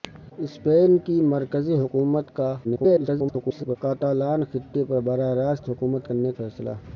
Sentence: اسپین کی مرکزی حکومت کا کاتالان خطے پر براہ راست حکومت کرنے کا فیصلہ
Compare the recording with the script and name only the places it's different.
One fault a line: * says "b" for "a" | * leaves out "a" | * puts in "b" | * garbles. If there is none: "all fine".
* garbles
* leaves out "کا"